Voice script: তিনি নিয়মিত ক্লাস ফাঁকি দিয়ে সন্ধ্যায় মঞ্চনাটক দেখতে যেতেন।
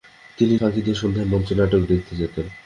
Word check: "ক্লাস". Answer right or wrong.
wrong